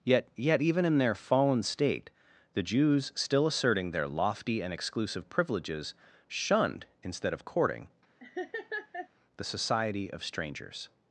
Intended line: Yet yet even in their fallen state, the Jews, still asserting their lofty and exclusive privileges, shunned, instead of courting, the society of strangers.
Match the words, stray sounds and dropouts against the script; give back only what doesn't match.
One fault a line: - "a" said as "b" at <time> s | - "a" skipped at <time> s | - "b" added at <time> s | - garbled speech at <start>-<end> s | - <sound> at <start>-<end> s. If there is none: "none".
- laugh at 8.2-9.1 s